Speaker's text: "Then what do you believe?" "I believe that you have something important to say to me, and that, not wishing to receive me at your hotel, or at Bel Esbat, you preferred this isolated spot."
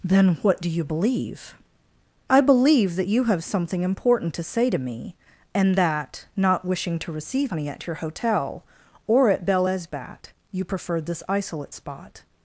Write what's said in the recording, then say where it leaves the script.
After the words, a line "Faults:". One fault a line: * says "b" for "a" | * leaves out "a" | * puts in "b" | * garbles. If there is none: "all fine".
"Then what do you believe?" "I believe that you have something important to say to me, and that, not wishing to receive me at your hotel, or at Bel Esbat, you preferred this isolate spot."
Faults:
* says "isolate" for "isolated"